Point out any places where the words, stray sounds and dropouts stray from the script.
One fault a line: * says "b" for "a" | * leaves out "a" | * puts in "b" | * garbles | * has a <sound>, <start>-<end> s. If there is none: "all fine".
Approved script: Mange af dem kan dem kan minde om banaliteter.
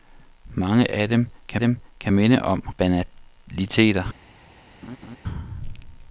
* has a laugh, 4.8-5.2 s